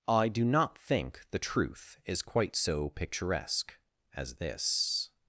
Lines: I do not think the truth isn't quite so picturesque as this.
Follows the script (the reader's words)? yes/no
no